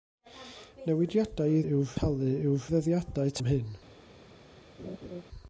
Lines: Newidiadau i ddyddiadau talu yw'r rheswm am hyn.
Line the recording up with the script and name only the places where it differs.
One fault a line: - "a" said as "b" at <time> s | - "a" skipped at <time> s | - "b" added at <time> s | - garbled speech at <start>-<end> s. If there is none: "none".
- "ddyddiadau" said as "yw'r" at 1.6 s
- "rheswm" said as "ddyddiadau" at 2.7 s